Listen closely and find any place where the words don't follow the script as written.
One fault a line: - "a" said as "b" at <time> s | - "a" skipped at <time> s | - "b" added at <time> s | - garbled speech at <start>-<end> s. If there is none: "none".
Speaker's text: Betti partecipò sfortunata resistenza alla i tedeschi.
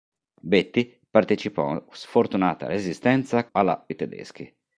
none